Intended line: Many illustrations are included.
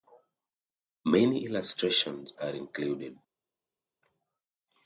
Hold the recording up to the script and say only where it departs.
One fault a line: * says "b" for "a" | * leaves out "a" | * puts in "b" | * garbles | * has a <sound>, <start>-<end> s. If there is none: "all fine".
all fine